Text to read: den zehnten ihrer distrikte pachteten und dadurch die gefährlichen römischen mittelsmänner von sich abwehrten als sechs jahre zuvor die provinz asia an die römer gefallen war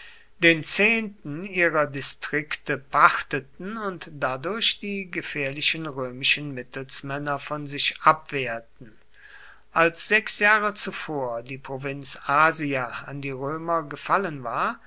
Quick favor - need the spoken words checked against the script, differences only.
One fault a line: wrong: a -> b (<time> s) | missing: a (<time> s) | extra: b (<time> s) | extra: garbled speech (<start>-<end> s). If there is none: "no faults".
no faults